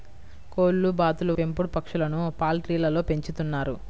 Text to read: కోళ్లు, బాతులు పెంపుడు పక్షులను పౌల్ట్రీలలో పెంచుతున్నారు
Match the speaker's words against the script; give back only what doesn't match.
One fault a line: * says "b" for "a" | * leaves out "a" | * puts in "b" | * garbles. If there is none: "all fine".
all fine